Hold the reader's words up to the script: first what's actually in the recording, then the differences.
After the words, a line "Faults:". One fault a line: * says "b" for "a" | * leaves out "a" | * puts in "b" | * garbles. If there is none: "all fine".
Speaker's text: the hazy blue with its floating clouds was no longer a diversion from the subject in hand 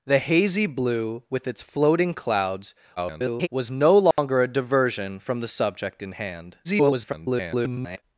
the hazy blue with its floating clouds [garbled] was no longer a diversion from the subject in hand [garbled]
Faults:
* garbles
* garbles